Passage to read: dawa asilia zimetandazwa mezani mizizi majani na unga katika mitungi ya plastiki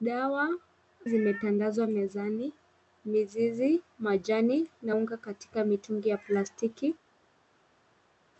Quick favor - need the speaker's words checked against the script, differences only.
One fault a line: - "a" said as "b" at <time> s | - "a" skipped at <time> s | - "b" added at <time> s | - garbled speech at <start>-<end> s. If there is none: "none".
- "asilia" skipped at 0.5 s